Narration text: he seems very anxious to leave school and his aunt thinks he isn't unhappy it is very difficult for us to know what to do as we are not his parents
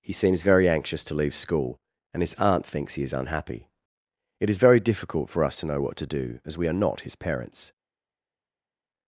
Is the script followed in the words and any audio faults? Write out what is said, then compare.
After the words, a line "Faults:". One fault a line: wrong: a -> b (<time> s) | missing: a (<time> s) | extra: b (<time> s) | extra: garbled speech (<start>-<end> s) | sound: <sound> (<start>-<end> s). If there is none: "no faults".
he seems very anxious to leave school and his aunt thinks he is unhappy it is very difficult for us to know what to do as we are not his parents
Faults:
wrong: isn't -> is (3.0 s)